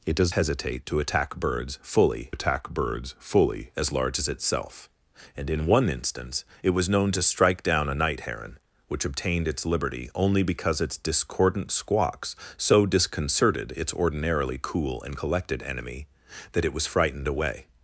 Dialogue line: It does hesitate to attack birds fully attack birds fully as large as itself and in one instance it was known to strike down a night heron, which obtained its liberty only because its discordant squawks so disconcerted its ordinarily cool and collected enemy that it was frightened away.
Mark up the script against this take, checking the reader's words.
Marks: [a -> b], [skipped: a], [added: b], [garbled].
It does hesitate to attack birds fully attack birds fully as large as itself and in one instance it was known to strike down a night heron, which obtained its liberty only because its discordant squawks so disconcerted its ordinarily cool and collected enemy that it was frightened away.